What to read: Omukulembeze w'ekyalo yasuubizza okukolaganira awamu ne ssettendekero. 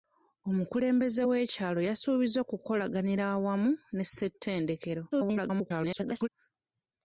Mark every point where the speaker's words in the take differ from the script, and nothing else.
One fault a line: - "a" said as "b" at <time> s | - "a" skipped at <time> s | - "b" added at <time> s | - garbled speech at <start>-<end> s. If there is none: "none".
- garbled speech at 5.1-6.3 s